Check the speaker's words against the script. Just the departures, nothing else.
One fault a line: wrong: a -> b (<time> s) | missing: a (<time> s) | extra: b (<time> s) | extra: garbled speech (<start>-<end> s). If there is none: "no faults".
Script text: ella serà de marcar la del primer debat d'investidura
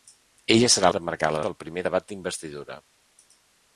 no faults